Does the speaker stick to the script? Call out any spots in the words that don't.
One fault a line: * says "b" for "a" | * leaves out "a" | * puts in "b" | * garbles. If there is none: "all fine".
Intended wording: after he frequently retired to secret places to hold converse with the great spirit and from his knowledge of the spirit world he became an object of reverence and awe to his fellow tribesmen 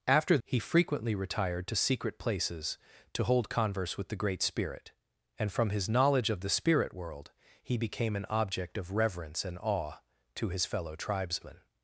all fine